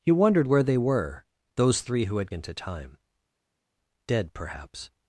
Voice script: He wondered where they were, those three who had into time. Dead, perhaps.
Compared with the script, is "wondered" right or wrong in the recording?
right